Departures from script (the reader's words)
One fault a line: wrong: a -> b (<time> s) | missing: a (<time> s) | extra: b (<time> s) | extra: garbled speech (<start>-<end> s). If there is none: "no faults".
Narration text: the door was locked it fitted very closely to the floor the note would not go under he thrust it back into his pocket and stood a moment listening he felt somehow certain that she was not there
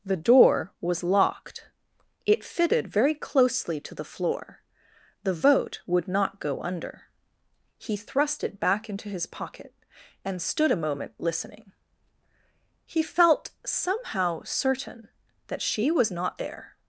wrong: note -> vote (5.3 s)